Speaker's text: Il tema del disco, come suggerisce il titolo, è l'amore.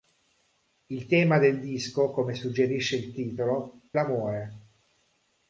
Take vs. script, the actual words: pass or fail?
fail